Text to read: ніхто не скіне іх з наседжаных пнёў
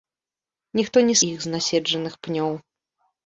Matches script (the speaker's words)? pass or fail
fail